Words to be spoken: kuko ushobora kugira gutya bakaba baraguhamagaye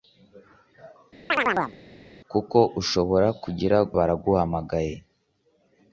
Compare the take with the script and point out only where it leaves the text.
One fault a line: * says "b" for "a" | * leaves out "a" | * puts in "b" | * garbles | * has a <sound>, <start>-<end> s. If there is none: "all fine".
* has a chirp, 1.3-1.8 s
* leaves out "gutya bakaba"